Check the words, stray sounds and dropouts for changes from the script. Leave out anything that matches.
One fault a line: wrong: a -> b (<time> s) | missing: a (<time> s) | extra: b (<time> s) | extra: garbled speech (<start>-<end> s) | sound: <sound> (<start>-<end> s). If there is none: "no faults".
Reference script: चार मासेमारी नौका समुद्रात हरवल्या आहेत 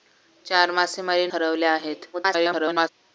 missing: नौका समुद्रात (1.3 s)
extra: garbled speech (2.1-2.9 s)